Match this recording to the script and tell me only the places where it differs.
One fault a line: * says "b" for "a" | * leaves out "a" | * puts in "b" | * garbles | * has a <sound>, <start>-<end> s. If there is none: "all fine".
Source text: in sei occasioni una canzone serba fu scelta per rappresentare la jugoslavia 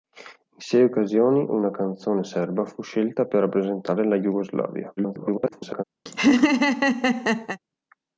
* garbles
* has a laugh, 6.1-7.6 s